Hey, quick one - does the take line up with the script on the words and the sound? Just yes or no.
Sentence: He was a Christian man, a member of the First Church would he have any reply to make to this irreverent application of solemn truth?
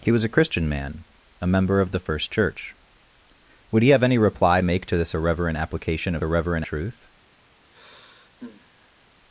no